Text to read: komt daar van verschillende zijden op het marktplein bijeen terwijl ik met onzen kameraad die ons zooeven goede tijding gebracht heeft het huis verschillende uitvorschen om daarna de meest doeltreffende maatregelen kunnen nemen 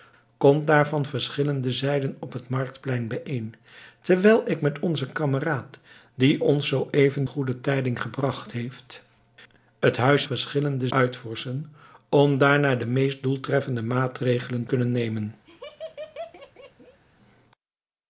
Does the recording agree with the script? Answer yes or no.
yes